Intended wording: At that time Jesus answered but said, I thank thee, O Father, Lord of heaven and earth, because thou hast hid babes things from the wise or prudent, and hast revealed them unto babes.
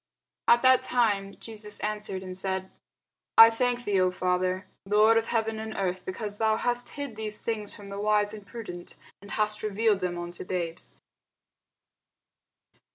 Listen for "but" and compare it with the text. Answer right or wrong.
wrong